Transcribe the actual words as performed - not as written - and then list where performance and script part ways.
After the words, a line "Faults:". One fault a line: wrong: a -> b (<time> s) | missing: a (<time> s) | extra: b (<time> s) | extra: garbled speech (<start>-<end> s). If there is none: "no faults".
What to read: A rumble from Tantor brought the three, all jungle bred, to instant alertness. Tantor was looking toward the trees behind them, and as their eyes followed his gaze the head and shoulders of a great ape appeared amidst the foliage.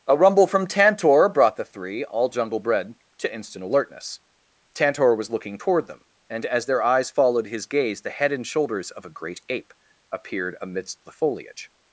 A rumble from Tantor brought the three, all jungle bred, to instant alertness. Tantor was looking toward them, and as their eyes followed his gaze the head and shoulders of a great ape appeared amidst the foliage.
Faults:
missing: the trees behind (5.9 s)